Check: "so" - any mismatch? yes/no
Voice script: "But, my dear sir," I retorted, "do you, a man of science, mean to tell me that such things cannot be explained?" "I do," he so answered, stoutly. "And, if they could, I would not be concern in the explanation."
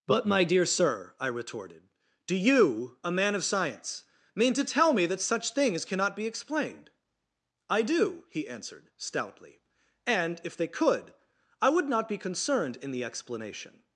yes